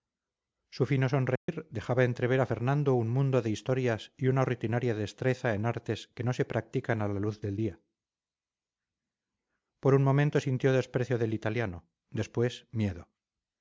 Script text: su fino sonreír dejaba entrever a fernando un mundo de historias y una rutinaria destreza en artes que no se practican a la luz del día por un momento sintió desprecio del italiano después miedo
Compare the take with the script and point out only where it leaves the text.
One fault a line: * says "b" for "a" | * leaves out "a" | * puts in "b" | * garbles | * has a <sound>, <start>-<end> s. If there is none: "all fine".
* has a dropout, 1.4-1.5 s